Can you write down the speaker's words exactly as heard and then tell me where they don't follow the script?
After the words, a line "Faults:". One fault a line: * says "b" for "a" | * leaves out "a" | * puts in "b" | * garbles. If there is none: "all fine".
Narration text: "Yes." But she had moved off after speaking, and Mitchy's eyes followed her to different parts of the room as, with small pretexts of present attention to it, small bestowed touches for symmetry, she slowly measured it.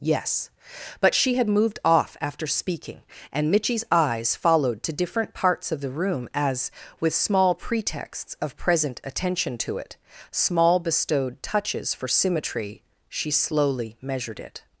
"Yes." But she had moved off after speaking, and Mitchy's eyes followed to different parts of the room as, with small pretexts of present attention to it, small bestowed touches for symmetry, she slowly measured it.
Faults:
* leaves out "her"